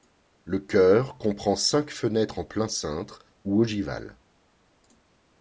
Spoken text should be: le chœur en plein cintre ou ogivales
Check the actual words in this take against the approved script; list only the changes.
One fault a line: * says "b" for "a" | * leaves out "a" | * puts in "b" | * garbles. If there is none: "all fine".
* puts in "comprend cinq fenêtres"